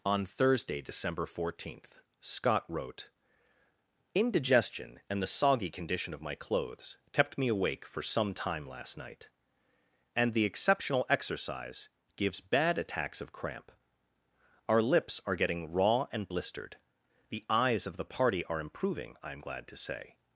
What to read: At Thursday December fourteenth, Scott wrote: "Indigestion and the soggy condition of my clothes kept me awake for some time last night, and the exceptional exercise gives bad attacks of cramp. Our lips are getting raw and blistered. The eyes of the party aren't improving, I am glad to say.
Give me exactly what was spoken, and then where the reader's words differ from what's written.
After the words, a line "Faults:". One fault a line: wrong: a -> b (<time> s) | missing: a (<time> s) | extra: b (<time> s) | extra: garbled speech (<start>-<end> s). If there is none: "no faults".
On Thursday December fourteenth, Scott wrote: "Indigestion and the soggy condition of my clothes kept me awake for some time last night, and the exceptional exercise gives bad attacks of cramp. Our lips are getting raw and blistered. The eyes of the party are improving, I am glad to say.
Faults:
wrong: At -> On (0.0 s)
wrong: aren't -> are (18.4 s)